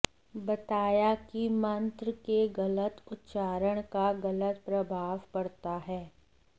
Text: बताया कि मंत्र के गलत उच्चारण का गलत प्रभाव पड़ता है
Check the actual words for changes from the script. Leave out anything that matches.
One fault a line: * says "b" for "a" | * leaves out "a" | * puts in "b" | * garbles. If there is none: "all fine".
all fine